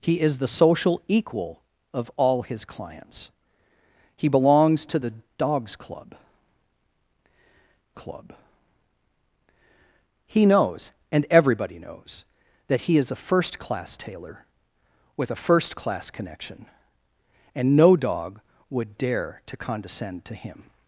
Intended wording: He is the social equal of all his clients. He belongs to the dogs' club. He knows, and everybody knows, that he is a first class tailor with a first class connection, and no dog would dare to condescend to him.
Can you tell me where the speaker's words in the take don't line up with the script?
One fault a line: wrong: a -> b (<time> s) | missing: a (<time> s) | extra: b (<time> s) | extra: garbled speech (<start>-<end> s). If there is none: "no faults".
extra: club (7.9 s)